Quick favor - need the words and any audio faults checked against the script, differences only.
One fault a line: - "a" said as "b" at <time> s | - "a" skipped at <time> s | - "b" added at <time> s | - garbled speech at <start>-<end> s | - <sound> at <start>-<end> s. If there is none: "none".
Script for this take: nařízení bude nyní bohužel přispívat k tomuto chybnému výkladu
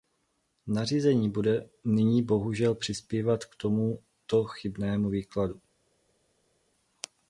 none